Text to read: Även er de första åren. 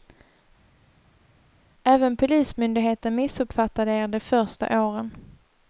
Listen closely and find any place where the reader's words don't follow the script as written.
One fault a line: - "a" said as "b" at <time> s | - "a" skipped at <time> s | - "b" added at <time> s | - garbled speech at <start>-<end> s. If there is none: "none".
- "polismyndigheten missuppfattade" added at 2.2 s